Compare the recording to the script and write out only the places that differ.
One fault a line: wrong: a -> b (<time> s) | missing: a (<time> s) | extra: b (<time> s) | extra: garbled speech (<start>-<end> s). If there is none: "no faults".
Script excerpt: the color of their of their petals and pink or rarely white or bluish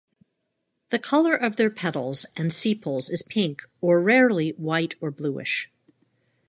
wrong: of their petals and -> petals and sepals is (1.7 s)